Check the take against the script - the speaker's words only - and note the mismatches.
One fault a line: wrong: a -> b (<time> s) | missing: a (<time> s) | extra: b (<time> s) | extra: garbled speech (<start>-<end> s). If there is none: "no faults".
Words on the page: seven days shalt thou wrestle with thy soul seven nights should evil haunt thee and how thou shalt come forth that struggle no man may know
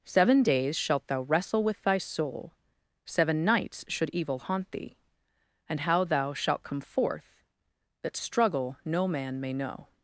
no faults